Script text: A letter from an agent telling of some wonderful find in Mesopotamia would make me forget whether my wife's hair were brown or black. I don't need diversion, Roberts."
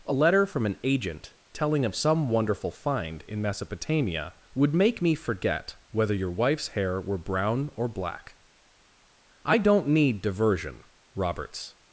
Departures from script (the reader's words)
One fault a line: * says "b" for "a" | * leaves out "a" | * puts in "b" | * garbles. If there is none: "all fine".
* says "your" for "my"